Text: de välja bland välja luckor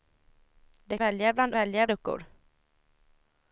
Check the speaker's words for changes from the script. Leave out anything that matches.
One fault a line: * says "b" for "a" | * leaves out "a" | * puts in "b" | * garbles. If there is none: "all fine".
all fine